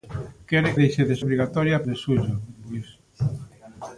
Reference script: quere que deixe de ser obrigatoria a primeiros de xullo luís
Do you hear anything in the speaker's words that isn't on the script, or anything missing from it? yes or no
yes